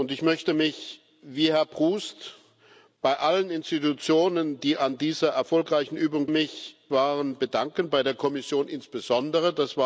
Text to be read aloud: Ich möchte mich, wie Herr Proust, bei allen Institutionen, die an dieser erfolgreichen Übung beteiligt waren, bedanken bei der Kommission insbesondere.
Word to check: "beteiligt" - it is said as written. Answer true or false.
false